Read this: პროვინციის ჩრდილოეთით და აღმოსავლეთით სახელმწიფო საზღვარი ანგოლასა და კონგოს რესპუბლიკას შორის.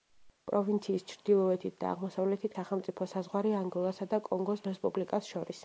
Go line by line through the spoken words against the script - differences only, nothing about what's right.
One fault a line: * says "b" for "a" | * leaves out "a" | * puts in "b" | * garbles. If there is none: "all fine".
all fine